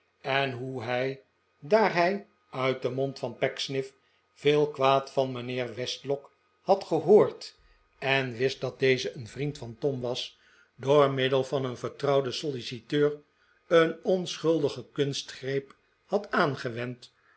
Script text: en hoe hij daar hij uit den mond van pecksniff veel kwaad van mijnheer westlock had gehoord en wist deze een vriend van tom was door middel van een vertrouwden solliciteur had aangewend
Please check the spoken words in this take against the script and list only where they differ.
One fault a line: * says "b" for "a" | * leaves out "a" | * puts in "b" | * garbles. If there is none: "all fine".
* puts in "dat"
* puts in "een onschuldige kunstgreep"